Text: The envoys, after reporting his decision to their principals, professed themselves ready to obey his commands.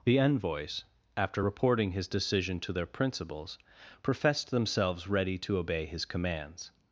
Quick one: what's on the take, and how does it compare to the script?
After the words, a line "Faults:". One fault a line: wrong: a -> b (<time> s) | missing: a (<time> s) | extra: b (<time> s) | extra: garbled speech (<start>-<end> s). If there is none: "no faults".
The envoys, after reporting his decision to their principals, professed themselves ready to obey his commands.
Faults:
no faults